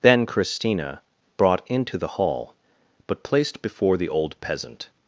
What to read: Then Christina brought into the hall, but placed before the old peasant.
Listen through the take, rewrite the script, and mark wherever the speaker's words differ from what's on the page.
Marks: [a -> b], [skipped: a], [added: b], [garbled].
Then Christina brought into the hall, but placed before the old peasant.